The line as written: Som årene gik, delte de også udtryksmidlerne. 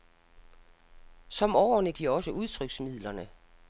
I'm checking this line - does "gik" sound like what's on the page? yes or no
no